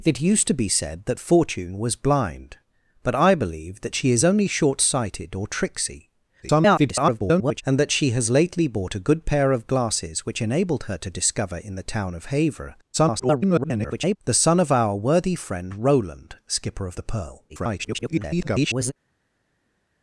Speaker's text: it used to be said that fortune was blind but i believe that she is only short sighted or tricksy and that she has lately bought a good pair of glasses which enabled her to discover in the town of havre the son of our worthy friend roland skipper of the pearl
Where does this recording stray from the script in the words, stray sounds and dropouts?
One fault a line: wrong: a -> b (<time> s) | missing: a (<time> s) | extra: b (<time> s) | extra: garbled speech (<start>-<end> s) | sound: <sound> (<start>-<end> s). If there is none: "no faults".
extra: garbled speech (6.4-7.6 s)
extra: garbled speech (12.9-14.2 s)
extra: garbled speech (17.5-18.9 s)